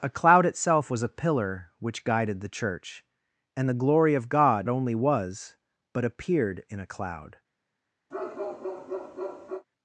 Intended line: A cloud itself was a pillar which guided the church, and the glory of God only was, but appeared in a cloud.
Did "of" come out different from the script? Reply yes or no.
no